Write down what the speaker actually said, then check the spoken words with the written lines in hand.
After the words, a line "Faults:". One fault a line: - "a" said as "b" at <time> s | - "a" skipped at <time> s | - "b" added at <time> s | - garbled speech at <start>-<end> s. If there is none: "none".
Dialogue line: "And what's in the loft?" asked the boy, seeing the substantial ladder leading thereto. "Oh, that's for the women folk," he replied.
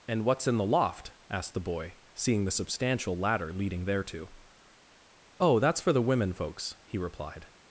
"And what's in the loft?" asked the boy, seeing the substantial ladder leading thereto. "Oh, that's for the women folks," he replied.
Faults:
- "folk" said as "folks" at 6.3 s